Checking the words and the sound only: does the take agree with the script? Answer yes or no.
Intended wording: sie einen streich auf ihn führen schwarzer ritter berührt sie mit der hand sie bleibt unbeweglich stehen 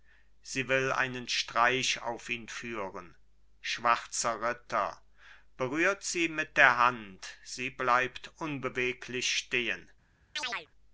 no